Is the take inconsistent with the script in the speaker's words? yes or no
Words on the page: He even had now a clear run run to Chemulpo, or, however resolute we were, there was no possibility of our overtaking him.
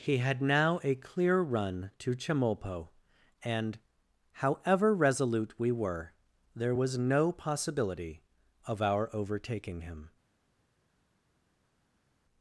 yes